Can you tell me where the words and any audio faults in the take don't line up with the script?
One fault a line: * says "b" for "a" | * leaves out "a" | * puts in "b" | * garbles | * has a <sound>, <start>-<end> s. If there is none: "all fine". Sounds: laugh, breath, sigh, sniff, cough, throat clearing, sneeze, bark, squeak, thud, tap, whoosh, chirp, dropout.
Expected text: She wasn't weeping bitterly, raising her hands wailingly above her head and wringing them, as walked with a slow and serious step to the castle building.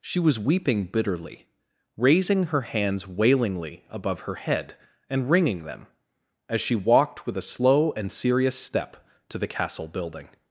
* says "was" for "wasn't"
* puts in "she"